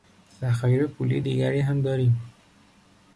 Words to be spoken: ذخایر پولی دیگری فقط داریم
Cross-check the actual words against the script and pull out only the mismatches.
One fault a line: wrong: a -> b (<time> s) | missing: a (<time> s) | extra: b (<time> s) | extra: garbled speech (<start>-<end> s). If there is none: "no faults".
wrong: فقط -> هم (1.6 s)